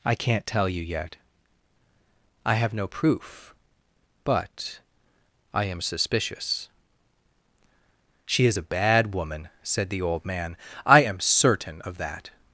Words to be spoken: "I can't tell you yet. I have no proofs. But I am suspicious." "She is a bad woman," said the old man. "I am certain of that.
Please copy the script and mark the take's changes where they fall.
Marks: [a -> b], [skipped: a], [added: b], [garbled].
"I can't tell you yet. I have no [proofs. -> proof] But I am suspicious." "She is a bad woman," said the old man. "I am certain of that.